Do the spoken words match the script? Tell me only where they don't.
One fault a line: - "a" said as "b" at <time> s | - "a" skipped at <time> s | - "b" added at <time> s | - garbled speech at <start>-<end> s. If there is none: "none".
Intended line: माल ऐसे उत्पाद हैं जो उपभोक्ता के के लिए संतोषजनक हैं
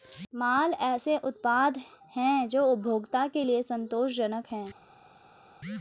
- "के" skipped at 3.4 s